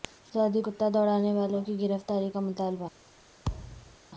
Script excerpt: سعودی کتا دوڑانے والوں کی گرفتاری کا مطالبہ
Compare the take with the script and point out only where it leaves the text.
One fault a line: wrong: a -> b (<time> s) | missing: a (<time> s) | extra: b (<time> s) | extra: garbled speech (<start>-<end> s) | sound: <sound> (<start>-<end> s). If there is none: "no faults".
sound: thud (3.4-4.0 s)